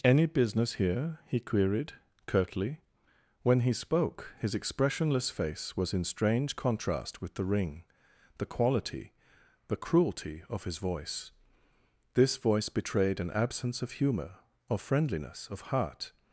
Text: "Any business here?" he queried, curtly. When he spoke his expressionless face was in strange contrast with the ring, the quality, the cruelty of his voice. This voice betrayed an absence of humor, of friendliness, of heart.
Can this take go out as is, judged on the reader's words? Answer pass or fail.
pass